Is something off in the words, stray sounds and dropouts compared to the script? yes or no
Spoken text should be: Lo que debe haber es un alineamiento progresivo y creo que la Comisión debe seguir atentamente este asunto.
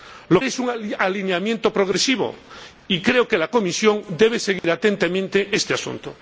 yes